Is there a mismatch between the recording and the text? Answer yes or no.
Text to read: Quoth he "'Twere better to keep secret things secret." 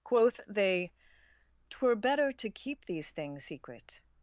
yes